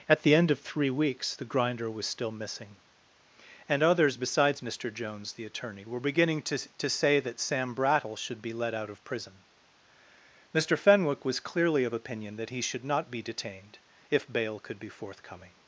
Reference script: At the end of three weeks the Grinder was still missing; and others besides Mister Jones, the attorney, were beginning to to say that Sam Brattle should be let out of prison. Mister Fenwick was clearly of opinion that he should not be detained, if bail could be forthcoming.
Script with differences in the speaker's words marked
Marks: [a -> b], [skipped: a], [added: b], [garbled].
At the end of three weeks the Grinder was still missing; and others besides Mister Jones, the attorney, were beginning to to say that Sam Brattle should be let out of prison. Mister Fenwick was clearly of opinion that he should not be detained, if bail could be forthcoming.